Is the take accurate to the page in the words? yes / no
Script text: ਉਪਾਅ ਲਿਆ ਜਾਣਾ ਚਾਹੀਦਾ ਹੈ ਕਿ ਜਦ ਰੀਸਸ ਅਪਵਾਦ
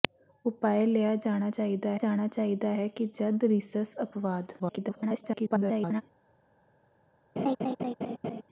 no